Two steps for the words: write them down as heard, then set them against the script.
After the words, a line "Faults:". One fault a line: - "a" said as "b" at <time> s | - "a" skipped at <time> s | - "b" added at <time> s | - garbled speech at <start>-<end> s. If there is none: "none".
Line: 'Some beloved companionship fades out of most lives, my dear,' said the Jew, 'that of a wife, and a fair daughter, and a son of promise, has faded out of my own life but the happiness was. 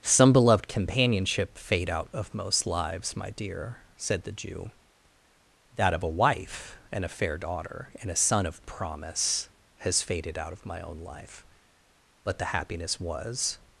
'Some beloved companionship fade out of most lives, my dear,' said the Jew, 'that of a wife, and a fair daughter, and a son of promise, has faded out of my own life but the happiness was.
Faults:
- "fades" said as "fade" at 1.6 s